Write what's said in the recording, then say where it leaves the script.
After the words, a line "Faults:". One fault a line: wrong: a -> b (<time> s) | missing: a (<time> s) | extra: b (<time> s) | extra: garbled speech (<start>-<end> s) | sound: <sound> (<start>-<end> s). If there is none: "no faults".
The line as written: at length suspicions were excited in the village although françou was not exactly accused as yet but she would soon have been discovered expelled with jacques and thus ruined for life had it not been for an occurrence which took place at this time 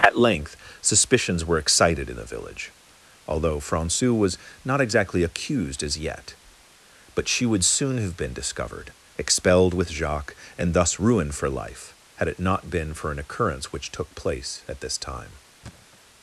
at length suspicions were excited in the village although françou was not exactly accused as yet but she would soon have been discovered expelled with jacques and thus ruined for life had it not been for an occurrence which took place at this time
Faults:
sound: thud (15.6-16.0 s)